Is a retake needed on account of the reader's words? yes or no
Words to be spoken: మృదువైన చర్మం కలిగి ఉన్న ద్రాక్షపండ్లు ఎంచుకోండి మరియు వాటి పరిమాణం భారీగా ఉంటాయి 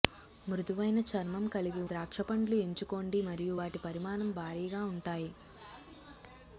yes